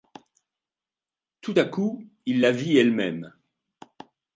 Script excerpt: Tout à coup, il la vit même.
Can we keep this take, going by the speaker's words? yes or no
no